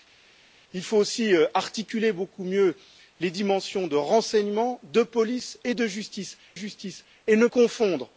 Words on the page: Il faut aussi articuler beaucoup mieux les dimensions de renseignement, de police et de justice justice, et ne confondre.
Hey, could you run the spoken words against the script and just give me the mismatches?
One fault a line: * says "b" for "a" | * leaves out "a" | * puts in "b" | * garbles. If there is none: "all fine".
all fine